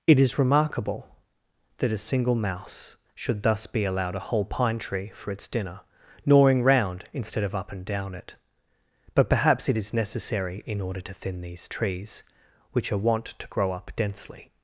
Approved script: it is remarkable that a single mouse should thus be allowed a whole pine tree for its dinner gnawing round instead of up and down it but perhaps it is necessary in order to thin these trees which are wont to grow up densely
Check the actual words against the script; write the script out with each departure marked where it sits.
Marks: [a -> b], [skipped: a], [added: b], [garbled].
it is remarkable that a single mouse should thus be allowed a whole pine tree for its dinner gnawing round instead of up and down it but perhaps it is necessary in order to thin these trees which are wont to grow up densely